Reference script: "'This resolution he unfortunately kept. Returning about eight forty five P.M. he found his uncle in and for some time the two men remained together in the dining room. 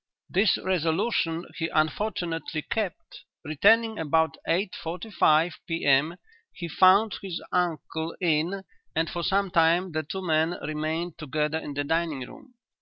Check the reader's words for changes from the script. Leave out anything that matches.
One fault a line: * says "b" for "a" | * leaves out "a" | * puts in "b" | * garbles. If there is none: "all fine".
all fine